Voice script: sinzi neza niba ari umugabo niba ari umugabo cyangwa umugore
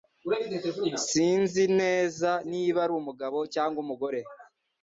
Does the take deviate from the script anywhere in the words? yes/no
yes